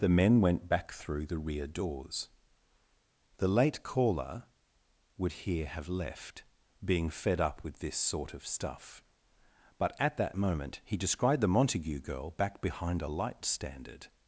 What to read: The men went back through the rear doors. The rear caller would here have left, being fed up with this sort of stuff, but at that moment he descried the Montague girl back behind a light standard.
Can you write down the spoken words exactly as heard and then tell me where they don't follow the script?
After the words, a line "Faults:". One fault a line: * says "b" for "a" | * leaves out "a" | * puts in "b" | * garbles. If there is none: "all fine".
The men went back through the rear doors. The late caller would here have left, being fed up with this sort of stuff, but at that moment he descried the Montague girl back behind a light standard.
Faults:
* says "late" for "rear"